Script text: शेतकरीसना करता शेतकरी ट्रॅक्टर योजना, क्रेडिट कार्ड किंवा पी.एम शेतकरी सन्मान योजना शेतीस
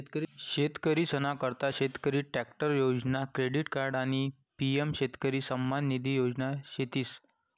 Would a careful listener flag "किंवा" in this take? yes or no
yes